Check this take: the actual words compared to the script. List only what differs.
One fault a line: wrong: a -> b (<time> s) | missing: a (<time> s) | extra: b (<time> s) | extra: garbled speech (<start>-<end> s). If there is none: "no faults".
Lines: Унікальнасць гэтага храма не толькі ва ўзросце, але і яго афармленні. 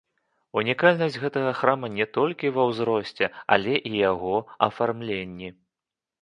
no faults